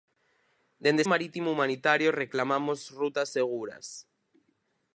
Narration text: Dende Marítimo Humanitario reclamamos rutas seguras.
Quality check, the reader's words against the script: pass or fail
pass